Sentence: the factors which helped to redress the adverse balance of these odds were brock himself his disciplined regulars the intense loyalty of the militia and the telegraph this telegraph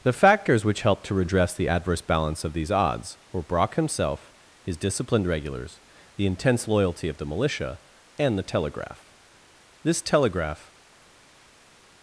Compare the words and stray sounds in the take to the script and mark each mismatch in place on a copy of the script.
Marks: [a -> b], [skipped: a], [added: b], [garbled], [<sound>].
the factors which helped to redress the adverse balance of these odds were brock himself his disciplined regulars the intense loyalty of the militia and the telegraph this telegraph